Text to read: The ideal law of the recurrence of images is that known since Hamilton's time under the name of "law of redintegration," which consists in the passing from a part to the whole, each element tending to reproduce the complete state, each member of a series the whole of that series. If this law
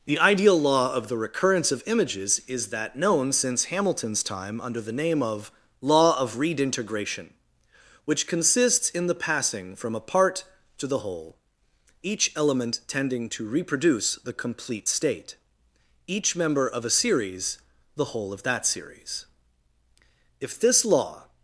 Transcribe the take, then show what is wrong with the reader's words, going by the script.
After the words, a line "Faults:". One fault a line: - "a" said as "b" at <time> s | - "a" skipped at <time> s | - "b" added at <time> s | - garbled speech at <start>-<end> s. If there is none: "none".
The ideal law of the recurrence of images is that known since Hamilton's time under the name of "law of redintegration," which consists in the passing from a part to the whole, each element tending to reproduce the complete state, each member of a series the whole of that series. If this law
Faults:
none